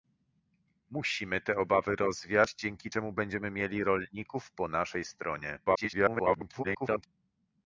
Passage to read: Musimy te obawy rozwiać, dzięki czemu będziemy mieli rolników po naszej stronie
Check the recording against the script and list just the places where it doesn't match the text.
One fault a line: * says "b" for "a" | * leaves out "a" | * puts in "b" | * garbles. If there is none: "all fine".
* garbles